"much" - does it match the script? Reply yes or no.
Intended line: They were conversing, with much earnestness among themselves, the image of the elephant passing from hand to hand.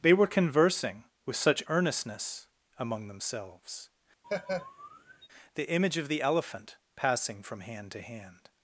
no